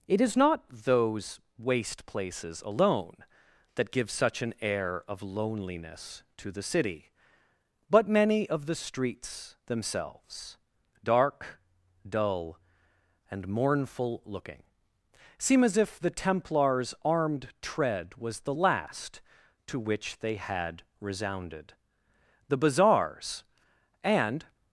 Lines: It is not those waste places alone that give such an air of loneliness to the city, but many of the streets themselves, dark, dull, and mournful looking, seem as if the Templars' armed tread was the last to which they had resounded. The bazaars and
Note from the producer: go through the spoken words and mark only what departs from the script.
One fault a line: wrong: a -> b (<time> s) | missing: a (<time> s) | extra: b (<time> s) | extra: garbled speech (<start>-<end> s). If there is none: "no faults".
no faults